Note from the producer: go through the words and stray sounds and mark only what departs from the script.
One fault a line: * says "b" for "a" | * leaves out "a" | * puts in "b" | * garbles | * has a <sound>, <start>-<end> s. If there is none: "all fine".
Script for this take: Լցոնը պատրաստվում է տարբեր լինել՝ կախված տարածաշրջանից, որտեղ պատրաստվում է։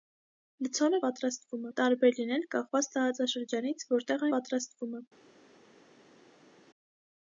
all fine